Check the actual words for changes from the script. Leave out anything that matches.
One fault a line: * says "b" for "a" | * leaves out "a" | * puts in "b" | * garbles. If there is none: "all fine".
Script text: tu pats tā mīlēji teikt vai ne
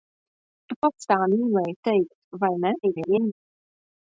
* garbles